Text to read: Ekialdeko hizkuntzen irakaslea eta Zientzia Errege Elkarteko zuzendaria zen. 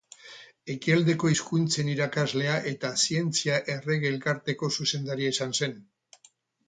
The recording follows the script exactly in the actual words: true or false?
false